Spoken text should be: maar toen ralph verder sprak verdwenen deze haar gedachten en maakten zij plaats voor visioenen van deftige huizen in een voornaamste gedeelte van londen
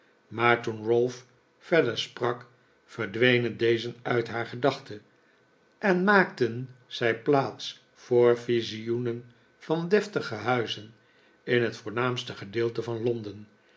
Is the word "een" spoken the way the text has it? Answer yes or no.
no